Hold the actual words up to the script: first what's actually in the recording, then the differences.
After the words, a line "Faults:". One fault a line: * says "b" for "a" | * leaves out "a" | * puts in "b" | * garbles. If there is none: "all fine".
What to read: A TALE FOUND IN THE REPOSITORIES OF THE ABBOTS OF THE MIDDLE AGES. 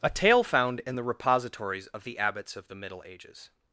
A TALE FOUND IN THE REPOSITORIES OF THE ABBOTS OF THE MIDDLE AGES.
Faults:
all fine